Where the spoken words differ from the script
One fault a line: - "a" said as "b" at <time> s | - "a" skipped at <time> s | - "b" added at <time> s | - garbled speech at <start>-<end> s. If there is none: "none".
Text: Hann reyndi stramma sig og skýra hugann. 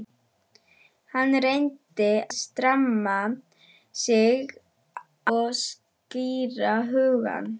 none